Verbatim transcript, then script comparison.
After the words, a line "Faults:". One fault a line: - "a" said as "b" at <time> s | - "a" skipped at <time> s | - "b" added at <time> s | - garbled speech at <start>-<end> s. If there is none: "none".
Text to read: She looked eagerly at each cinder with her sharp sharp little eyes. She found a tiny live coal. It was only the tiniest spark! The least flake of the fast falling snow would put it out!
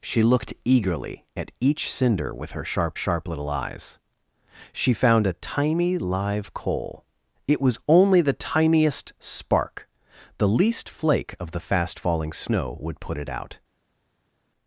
She looked eagerly at each cinder with her sharp sharp little eyes. She found a tiny live coal. It was only the tiniest spark! The least flake of the fast falling snow would put it out!
Faults:
none